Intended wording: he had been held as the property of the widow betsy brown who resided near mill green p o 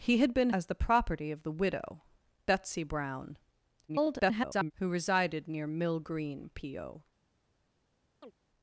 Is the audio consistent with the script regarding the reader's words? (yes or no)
no